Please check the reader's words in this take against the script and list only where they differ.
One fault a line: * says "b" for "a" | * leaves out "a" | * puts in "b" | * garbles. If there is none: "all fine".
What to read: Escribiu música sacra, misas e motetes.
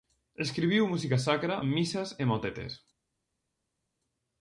all fine